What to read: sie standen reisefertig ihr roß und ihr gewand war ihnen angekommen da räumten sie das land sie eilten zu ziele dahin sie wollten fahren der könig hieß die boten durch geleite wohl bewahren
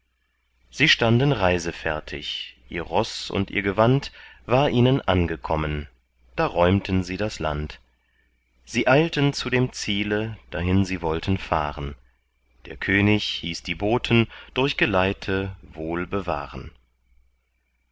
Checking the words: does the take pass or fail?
fail